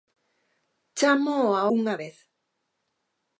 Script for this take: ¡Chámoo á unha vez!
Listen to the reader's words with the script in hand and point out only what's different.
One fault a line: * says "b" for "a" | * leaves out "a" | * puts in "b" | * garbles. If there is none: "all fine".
all fine